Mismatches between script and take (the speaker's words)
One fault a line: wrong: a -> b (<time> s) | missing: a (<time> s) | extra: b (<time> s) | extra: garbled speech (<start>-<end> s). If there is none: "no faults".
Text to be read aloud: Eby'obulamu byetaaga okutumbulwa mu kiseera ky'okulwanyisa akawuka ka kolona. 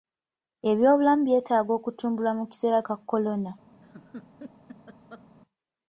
missing: ky'okulwanyisa akawuka (2.8 s)